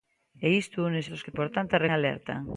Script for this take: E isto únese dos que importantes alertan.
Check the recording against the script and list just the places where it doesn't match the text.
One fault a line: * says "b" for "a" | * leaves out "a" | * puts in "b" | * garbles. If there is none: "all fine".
all fine